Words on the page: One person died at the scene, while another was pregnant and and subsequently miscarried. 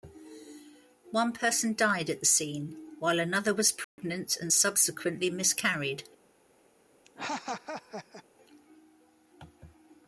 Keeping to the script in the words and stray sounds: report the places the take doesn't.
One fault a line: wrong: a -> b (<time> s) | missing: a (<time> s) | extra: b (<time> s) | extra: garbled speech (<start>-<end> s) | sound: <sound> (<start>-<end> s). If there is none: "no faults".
sound: dropout (3.8-4.0 s)
missing: and (4.5 s)
sound: laugh (7.0-8.2 s)